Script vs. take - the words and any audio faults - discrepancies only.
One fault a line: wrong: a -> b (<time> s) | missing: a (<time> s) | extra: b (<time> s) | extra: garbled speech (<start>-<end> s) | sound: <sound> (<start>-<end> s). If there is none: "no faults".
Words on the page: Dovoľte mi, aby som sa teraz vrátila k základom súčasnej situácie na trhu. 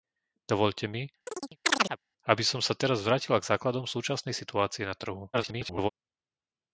sound: chirp (1.3-2.0 s)
extra: garbled speech (5.3-5.9 s)